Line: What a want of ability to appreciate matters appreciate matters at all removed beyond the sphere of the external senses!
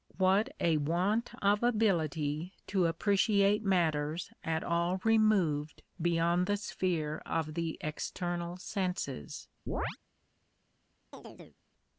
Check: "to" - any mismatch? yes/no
no